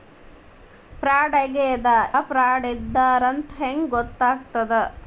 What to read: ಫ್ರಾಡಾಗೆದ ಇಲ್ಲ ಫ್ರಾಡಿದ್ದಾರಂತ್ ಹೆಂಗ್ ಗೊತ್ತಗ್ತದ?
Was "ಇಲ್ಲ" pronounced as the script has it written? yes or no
no